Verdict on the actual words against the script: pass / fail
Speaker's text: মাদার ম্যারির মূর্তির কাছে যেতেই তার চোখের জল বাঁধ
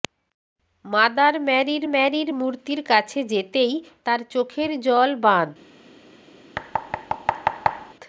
fail